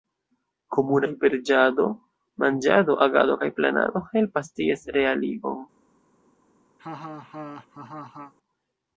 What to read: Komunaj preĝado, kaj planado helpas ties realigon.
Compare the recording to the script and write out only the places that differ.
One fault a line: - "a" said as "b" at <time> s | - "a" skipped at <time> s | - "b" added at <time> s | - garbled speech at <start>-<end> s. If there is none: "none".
- "manĝado agado" added at 2.5 s